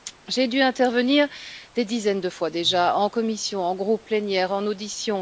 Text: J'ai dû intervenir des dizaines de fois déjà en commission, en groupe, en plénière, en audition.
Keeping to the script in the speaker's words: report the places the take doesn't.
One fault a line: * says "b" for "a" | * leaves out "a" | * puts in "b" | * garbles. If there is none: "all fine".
* leaves out "en"